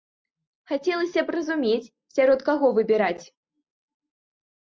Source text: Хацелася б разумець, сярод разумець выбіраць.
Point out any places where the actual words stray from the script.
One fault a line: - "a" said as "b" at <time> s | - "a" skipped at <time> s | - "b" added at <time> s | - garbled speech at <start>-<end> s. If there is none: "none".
- "разумець" said as "каго" at 2.5 s